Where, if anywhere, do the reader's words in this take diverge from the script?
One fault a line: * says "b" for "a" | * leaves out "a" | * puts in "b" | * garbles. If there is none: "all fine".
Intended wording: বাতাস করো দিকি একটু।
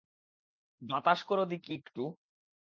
all fine